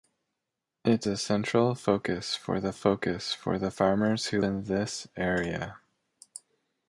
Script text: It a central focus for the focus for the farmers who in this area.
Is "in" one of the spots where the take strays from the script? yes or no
no